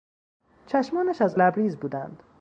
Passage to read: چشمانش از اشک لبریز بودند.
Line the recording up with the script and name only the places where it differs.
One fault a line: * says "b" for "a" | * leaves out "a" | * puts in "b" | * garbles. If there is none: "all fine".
* leaves out "اشک"